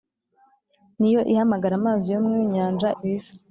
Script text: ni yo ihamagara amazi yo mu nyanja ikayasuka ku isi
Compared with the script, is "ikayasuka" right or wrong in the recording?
wrong